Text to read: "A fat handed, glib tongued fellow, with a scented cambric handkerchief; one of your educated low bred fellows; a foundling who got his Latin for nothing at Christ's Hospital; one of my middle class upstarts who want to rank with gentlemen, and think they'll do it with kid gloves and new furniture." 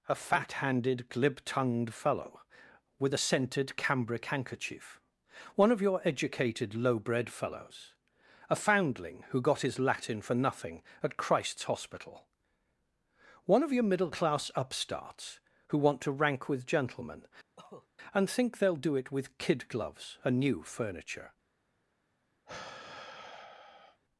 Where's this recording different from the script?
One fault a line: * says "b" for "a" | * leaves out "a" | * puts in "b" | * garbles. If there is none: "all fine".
* says "your" for "my"